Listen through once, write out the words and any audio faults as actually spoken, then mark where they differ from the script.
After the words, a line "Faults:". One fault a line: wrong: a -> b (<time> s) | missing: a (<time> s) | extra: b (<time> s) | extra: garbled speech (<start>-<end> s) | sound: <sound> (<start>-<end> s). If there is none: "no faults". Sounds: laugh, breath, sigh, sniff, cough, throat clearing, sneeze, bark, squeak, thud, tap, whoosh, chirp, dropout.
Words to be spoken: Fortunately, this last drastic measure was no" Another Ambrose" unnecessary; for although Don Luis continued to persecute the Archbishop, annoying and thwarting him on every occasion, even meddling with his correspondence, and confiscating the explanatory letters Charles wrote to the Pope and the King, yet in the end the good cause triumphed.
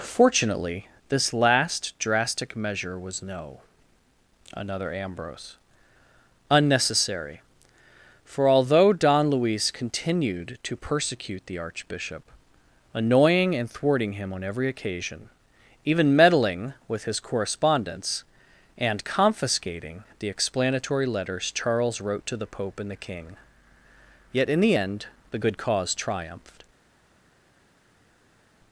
Fortunately, this last drastic measure was no" Another Ambrose" unnecessary; for although Don Luis continued to persecute the Archbishop, annoying and thwarting him on every occasion, even meddling with his correspondence, and confiscating the explanatory letters Charles wrote to the Pope and the King, yet in the end the good cause triumphed.
Faults:
no faults